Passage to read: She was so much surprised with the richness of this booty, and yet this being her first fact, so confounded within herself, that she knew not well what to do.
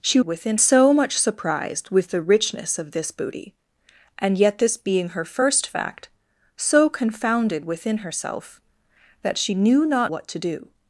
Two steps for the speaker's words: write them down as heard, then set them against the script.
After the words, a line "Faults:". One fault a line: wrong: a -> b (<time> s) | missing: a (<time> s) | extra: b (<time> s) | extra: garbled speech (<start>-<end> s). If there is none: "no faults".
She within so much surprised with the richness of this booty, and yet this being her first fact, so confounded within herself, that she knew not what to do.
Faults:
wrong: was -> within (0.2 s)
missing: well (10.1 s)